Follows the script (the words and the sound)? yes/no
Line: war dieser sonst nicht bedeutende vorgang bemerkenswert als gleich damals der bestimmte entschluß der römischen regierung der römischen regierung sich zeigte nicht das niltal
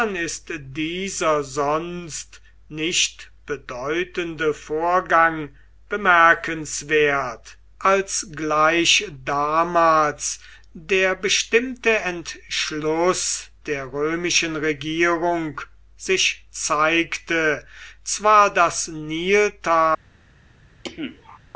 no